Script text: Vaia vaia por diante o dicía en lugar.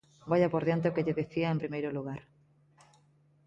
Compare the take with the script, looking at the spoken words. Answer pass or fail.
fail